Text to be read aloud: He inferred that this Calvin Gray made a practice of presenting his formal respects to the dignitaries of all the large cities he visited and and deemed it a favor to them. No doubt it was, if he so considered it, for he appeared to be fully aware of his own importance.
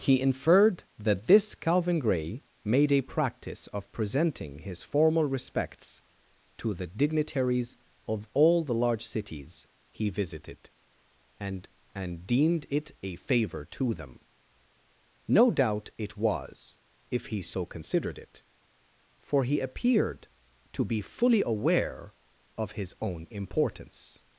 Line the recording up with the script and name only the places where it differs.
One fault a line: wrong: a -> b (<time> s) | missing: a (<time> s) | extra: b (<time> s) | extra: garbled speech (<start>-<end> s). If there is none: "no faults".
no faults